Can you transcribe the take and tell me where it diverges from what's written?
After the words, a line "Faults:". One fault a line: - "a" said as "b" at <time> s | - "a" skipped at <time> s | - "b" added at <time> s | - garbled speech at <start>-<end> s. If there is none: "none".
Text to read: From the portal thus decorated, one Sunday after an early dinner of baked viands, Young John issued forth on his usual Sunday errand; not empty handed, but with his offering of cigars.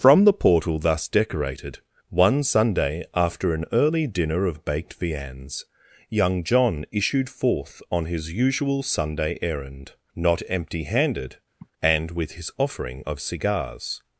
From the portal thus decorated, one Sunday after an early dinner of baked viands, Young John issued forth on his usual Sunday errand; not empty handed, and with his offering of cigars.
Faults:
- "but" said as "and" at 11.8 s